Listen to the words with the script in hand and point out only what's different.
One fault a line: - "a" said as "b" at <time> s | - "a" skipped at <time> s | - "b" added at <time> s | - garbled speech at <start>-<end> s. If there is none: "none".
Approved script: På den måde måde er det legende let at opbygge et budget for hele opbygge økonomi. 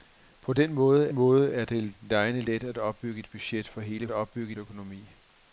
none